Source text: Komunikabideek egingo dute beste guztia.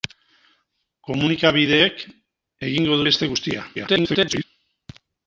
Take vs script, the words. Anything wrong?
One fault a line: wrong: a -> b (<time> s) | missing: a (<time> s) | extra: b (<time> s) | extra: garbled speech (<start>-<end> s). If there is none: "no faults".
missing: dute (3.0 s)
extra: garbled speech (3.7-4.4 s)